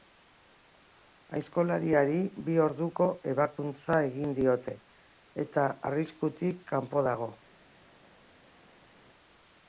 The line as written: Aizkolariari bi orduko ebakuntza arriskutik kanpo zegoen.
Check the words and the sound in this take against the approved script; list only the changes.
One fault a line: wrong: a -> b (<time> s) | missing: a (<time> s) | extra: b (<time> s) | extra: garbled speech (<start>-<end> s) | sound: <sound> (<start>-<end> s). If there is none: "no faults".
extra: egin diote eta (4.1 s)
wrong: zegoen -> dago (7.1 s)